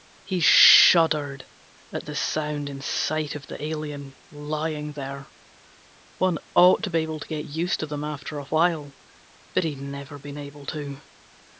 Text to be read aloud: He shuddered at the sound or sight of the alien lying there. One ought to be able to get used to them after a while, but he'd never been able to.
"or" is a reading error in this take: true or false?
true